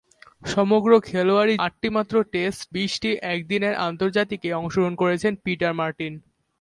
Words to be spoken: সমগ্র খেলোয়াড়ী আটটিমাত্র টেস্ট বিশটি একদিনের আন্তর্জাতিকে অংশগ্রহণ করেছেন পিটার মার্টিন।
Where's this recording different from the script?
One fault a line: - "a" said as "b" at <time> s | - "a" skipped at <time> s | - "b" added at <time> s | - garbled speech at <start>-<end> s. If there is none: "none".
none